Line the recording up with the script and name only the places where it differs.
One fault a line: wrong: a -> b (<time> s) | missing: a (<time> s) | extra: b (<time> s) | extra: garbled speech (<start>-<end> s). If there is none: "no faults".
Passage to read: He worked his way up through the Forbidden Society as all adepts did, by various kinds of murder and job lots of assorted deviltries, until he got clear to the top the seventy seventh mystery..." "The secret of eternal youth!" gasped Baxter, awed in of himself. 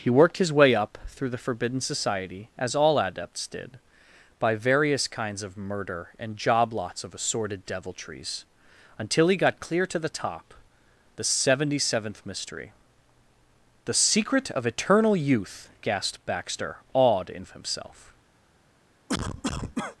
no faults